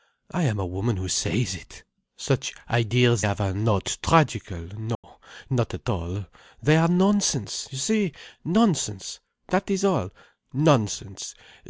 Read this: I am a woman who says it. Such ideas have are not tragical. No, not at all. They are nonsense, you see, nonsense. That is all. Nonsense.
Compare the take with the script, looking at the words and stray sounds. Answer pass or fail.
fail